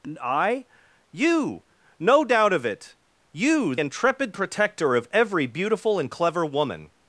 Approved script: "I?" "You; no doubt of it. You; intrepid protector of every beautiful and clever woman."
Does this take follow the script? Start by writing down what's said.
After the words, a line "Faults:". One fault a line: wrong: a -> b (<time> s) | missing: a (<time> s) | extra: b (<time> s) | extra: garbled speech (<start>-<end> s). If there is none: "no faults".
"I?" "You; no doubt of it. You; intrepid protector of every beautiful and clever woman."
Faults:
no faults